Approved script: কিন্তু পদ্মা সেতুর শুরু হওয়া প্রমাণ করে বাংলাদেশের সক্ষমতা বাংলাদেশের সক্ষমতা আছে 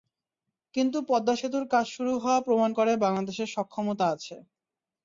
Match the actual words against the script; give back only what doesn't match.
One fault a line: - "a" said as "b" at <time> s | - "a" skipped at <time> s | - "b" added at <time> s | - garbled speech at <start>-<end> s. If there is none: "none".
- "কাজ" added at 1.7 s
- "বাংলাদেশের সক্ষমতা" skipped at 4.0 s